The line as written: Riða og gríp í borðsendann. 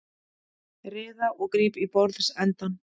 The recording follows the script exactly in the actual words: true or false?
true